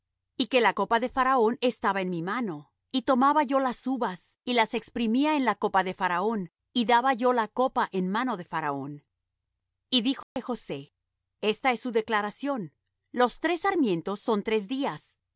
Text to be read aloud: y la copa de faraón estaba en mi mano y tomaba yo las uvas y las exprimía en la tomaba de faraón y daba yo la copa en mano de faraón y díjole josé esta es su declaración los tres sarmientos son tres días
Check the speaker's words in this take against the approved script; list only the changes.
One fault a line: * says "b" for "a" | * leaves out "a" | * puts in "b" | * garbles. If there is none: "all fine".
* puts in "que"
* says "copa" for "tomaba"